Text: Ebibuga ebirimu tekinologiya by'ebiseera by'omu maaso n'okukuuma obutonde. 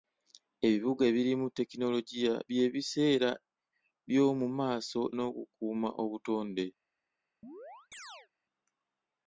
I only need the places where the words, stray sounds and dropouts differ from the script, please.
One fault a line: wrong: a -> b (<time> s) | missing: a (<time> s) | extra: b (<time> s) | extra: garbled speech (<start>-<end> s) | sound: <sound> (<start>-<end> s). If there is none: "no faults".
sound: chirp (7.4-8.3 s)